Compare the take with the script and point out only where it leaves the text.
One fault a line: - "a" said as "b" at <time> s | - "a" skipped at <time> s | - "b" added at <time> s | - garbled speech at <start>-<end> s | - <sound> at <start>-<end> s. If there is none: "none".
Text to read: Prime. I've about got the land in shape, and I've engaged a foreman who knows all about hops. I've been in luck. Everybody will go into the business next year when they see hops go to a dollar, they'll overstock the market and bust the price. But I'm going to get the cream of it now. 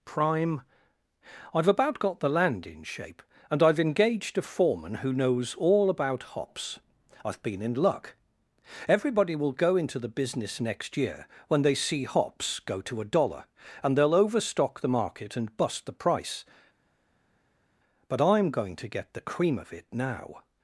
- "and" added at 13.8 s